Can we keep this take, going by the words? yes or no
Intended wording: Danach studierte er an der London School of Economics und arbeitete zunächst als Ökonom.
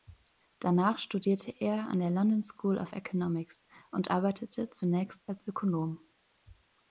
yes